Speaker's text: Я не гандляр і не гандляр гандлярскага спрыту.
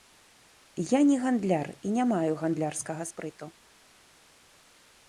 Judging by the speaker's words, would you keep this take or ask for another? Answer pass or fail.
fail